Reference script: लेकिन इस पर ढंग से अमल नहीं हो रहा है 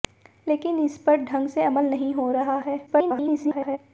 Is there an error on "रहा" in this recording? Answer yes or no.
no